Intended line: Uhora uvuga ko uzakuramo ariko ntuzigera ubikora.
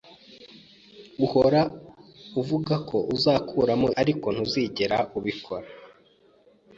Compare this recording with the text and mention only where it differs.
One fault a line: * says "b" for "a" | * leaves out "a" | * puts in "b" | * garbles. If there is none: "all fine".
all fine